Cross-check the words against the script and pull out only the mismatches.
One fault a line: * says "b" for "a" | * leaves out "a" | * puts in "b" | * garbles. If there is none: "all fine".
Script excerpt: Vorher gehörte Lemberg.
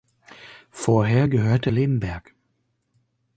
all fine